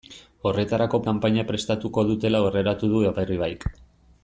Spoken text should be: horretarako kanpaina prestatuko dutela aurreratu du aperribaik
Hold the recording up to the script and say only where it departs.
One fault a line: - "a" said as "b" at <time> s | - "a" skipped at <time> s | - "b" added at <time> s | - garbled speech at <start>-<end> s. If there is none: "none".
none